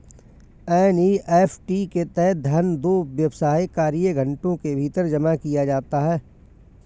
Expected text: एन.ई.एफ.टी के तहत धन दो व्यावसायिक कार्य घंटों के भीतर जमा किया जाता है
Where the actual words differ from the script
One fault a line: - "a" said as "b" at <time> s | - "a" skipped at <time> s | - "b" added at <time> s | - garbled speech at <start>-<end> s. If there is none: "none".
none